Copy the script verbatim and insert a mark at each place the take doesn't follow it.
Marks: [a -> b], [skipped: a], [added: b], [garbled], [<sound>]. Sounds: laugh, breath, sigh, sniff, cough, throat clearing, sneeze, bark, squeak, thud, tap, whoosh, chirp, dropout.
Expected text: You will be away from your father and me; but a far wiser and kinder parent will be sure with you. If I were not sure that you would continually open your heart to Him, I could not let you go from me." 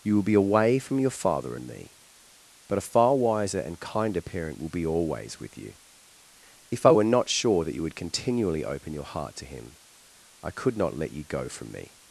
You will be away from your father and me; but a far wiser and kinder parent will be [sure -> always] with you. If I were not sure that you would continually open your heart to Him, I could not let you go from me."